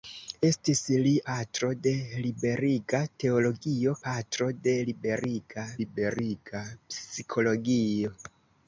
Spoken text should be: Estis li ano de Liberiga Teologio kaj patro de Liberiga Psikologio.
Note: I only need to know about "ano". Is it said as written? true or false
false